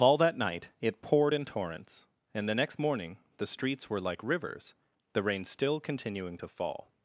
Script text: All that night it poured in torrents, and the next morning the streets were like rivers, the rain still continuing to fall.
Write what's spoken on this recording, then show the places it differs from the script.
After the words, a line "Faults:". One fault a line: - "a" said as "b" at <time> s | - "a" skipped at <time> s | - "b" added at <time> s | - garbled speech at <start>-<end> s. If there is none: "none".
All that night it poured in torrents, and the next morning the streets were like rivers, the rain still continuing to fall.
Faults:
none